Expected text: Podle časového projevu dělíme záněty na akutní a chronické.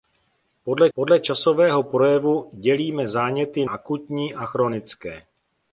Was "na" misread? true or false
true